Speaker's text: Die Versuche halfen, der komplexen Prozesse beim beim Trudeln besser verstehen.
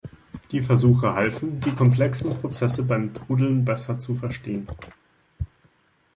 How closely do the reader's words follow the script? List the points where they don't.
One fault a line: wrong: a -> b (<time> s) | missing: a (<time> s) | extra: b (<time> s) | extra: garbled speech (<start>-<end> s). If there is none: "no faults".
wrong: der -> die (1.6 s)
missing: beim (3.2 s)
extra: zu (4.0 s)